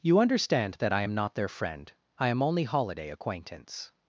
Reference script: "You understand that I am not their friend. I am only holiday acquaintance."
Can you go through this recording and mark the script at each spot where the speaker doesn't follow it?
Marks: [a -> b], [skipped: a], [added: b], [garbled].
"You understand that I am not their friend. I am only holiday acquaintance."